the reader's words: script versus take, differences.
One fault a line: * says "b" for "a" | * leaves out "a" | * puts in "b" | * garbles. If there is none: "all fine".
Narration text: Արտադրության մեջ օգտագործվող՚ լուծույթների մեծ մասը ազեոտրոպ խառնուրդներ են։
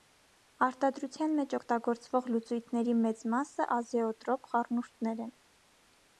all fine